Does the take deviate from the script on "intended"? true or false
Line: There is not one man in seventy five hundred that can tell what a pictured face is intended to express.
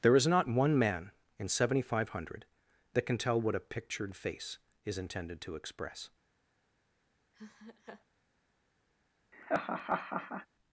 false